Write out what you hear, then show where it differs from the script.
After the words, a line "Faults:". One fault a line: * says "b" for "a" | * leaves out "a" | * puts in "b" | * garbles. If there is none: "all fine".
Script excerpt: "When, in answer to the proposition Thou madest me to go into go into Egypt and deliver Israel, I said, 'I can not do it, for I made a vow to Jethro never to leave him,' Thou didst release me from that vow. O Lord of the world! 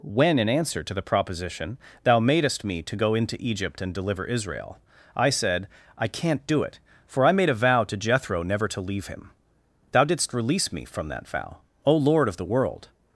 "When, in answer to the proposition Thou madest me to go into Egypt and deliver Israel, I said, 'I can not do it, for I made a vow to Jethro never to leave him,' Thou didst release me from that vow. O Lord of the world!
Faults:
* leaves out "go into"